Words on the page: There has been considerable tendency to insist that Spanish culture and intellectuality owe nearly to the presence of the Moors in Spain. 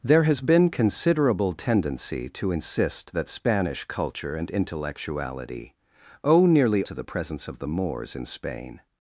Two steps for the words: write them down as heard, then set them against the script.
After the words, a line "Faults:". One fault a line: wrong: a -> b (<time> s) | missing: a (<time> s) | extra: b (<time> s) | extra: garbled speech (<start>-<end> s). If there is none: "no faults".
There has been considerable tendency to insist that Spanish culture and intellectuality owe nearly to the presence of the Moors in Spain.
Faults:
no faults